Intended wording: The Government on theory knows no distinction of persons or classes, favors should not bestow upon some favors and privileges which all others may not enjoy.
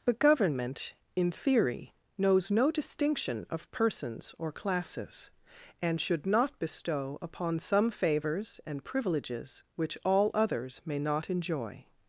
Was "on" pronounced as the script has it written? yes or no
no